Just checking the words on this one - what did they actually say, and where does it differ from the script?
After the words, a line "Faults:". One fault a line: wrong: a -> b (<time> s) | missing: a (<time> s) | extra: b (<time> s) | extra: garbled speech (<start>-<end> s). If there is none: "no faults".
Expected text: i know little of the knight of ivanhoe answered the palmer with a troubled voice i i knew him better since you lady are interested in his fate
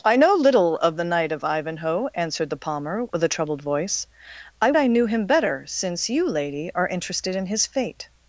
i know little of the knight of ivanhoe answered the palmer with a troubled voice i i knew him better since you lady are interested in his fate
Faults:
no faults